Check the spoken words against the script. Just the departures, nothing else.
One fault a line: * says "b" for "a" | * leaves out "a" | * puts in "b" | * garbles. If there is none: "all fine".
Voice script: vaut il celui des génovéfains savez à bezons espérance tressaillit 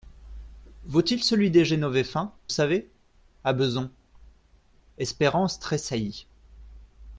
all fine